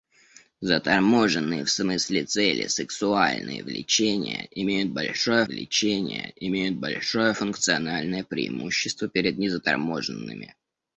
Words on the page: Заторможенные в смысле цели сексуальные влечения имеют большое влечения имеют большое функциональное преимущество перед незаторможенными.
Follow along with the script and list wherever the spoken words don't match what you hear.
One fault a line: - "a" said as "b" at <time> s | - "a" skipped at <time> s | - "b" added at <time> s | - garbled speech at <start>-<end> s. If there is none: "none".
none